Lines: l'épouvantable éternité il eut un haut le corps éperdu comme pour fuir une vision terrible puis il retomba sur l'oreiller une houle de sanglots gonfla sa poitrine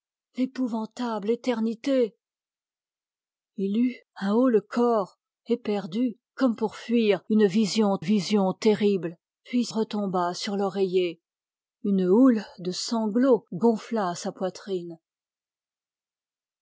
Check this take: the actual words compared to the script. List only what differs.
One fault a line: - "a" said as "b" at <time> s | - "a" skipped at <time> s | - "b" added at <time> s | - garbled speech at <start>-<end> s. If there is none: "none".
- "vision" added at 8.0 s
- "il" skipped at 9.7 s